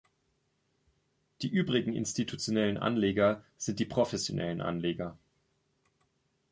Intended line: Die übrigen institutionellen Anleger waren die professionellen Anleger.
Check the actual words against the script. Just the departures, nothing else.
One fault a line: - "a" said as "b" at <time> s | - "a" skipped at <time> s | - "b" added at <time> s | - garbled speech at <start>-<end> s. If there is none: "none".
- "waren" said as "sind" at 3.6 s